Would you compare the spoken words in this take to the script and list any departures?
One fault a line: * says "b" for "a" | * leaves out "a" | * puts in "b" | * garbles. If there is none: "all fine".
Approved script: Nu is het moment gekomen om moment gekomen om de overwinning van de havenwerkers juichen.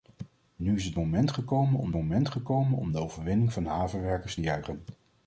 all fine